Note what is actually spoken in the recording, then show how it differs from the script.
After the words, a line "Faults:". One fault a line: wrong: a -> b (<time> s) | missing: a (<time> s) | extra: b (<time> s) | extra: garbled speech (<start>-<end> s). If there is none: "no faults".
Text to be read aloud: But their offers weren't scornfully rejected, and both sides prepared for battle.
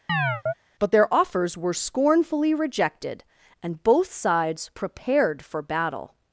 But their offers were scornfully rejected, and both sides prepared for battle.
Faults:
wrong: weren't -> were (1.6 s)